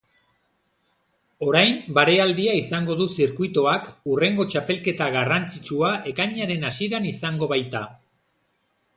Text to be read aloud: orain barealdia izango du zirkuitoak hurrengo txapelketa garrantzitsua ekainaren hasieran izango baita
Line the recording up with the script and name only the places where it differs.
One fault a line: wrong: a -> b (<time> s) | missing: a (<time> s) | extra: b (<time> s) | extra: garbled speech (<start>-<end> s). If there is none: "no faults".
no faults